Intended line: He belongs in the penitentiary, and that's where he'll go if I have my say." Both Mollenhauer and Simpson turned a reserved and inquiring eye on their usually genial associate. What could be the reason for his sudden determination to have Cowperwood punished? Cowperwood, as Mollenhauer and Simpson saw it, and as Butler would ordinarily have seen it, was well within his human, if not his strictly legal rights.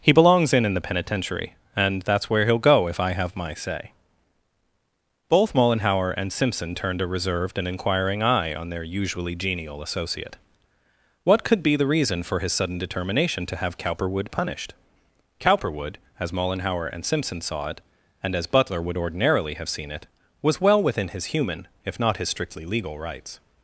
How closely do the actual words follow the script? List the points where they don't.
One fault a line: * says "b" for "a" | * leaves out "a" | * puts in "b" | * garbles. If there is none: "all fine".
* puts in "in"